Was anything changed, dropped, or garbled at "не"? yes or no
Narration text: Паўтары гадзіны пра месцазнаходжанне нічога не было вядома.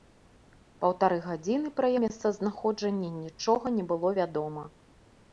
no